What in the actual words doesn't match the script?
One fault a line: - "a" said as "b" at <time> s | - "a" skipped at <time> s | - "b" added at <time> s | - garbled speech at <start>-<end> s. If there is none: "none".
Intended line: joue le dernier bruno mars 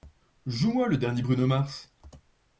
- "moi" added at 0.7 s